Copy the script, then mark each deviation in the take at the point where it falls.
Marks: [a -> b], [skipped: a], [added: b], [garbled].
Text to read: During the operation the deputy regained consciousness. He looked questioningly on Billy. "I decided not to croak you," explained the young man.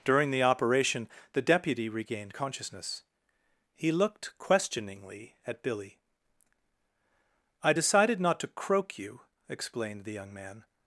During the operation the deputy regained consciousness. He looked questioningly [on -> at] Billy. "I decided not to croak you," explained the young man.